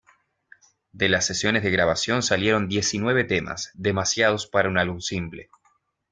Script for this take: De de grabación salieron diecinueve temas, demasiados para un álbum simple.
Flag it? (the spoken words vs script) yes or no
yes